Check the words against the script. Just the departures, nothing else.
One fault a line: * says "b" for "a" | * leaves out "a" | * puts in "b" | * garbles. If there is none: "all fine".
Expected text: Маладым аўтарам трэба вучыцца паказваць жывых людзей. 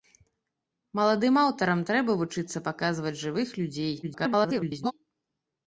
* garbles